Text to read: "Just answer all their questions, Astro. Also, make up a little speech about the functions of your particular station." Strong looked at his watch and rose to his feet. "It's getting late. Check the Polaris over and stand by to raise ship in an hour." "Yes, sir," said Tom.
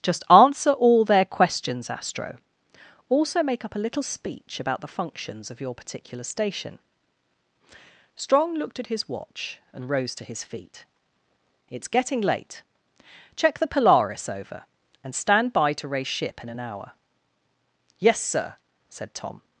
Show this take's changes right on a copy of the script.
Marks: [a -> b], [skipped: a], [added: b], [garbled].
"Just answer all their questions, Astro. Also, make up a little speech about the functions of your particular station." Strong looked at his watch and rose to his feet. "It's getting late. Check the Polaris over and stand by to raise ship in an hour." "Yes, sir," said Tom.